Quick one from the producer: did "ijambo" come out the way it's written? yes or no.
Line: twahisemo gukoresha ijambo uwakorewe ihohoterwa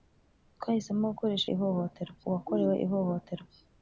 no